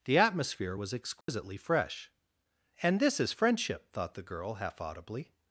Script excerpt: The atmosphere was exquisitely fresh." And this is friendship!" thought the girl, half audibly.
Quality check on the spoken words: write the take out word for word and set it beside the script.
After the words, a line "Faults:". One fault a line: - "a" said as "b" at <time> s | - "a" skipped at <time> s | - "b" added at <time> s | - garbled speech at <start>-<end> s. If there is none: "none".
The atmosphere was exquisitely fresh." And this is friendship!" thought the girl, half audibly.
Faults:
none